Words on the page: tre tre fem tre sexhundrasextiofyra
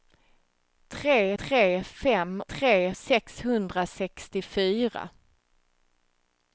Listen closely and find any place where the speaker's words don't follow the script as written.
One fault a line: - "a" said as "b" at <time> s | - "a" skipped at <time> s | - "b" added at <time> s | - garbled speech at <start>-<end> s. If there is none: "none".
none